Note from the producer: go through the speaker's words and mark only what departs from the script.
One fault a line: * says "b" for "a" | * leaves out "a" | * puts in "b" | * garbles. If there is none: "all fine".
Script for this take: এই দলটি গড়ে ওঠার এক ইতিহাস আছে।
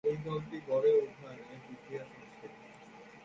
all fine